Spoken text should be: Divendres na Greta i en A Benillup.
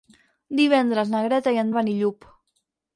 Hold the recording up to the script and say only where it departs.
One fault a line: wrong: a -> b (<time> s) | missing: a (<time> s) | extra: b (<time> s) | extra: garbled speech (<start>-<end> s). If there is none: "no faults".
no faults